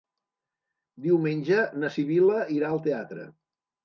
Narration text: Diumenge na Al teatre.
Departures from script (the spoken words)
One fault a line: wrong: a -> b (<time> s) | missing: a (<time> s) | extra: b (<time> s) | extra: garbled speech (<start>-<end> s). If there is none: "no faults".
extra: Sibil·la irà (1.9 s)